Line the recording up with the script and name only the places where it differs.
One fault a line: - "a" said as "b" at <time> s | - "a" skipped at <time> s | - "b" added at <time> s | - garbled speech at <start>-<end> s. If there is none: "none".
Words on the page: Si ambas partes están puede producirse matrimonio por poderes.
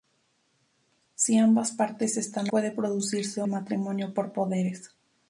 none